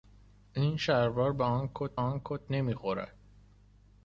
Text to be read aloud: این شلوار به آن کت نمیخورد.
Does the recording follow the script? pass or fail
fail